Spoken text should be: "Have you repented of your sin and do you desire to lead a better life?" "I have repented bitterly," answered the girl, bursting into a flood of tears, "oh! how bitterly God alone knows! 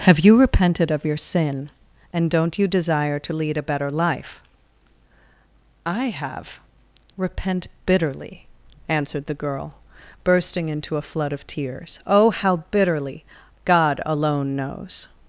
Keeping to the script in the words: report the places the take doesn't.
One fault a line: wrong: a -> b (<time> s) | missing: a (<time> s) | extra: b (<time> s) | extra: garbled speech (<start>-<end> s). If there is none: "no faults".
wrong: do -> don't (2.3 s)
wrong: repented -> repent (7.2 s)